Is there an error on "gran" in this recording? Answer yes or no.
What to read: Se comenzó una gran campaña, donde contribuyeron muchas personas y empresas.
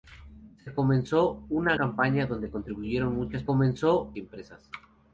yes